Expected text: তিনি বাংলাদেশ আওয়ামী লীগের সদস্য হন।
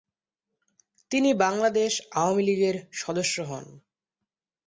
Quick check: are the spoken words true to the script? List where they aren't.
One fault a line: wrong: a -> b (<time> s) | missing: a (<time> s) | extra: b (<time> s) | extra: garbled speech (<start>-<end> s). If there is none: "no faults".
no faults